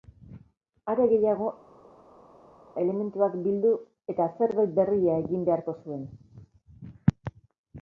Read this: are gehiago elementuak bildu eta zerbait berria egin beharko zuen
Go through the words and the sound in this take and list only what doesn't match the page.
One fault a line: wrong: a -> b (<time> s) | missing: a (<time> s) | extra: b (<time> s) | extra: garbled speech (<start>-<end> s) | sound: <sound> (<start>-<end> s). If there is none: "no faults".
no faults